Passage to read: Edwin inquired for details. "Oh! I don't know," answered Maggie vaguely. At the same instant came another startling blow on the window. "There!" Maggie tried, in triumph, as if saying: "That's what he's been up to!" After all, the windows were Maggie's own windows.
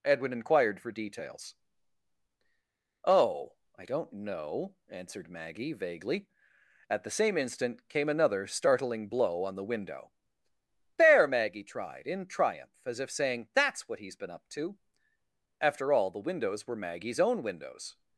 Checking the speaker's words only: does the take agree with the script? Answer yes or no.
yes